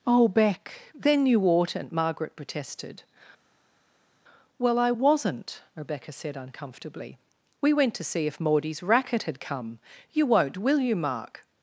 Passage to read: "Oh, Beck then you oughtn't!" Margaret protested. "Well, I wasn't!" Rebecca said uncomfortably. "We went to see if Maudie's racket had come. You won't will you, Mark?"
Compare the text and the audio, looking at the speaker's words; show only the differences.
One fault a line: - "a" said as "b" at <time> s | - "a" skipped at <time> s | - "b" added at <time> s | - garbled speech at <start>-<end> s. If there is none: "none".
none